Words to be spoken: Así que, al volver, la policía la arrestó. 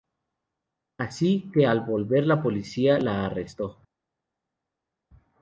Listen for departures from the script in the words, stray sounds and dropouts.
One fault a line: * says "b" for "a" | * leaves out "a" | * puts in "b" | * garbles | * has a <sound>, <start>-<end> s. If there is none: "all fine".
all fine